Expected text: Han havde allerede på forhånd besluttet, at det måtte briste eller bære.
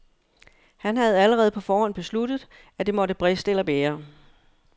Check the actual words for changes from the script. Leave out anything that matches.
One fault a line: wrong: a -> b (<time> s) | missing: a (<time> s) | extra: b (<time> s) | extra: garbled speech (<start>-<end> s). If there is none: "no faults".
no faults